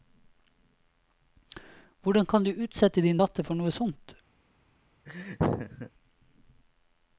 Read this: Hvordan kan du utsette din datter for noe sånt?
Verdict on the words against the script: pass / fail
pass